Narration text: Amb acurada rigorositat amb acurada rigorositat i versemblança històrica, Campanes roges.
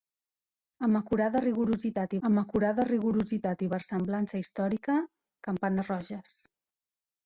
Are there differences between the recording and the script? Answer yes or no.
no